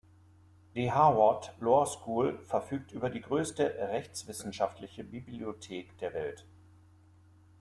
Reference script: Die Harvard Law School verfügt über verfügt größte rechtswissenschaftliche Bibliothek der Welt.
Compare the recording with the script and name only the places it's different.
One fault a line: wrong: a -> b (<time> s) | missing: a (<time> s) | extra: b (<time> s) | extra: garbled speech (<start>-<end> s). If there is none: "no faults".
wrong: verfügt -> die (3.1 s)